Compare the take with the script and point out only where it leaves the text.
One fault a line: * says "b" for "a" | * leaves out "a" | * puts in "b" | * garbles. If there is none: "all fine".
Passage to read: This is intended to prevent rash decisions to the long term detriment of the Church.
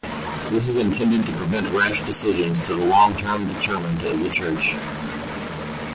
all fine